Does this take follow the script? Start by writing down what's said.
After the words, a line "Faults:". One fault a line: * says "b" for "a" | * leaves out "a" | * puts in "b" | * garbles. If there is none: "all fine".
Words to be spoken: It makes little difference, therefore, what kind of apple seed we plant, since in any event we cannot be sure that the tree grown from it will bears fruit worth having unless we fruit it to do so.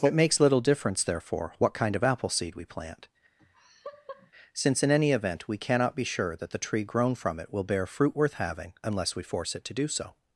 It makes little difference, therefore, what kind of apple seed we plant, since in any event we cannot be sure that the tree grown from it will bear fruit worth having unless we force it to do so.
Faults:
* says "bear" for "bears"
* says "force" for "fruit"